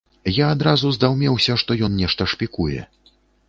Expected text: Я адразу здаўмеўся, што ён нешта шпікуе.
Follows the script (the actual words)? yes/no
yes